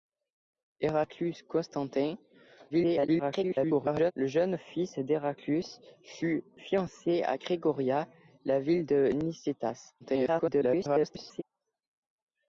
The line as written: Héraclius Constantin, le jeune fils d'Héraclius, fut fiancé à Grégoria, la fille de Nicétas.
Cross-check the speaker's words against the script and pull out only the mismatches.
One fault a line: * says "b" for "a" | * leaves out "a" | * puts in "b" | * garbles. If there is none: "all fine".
* garbles
* garbles